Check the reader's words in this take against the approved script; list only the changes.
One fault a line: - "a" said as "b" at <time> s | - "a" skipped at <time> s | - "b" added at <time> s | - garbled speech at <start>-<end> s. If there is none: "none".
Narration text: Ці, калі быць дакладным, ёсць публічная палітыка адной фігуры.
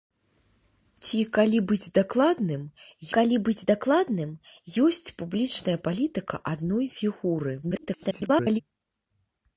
- "калі быць дакладным" added at 3.2 s
- garbled speech at 7.6-8.6 s